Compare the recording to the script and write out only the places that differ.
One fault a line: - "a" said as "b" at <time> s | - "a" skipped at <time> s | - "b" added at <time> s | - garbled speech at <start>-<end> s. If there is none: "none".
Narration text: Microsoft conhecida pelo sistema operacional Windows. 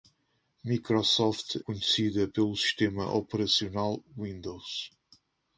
none